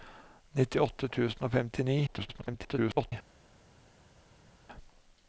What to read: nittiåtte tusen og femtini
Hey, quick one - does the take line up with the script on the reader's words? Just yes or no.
no